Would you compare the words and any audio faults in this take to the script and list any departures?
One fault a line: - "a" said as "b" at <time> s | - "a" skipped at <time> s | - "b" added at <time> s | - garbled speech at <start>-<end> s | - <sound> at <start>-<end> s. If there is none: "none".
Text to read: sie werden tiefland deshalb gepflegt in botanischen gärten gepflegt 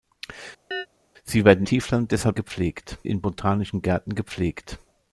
- chirp at 0.7-0.9 s